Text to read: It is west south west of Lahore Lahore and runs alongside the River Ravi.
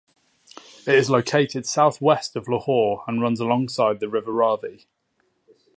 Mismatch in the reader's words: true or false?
true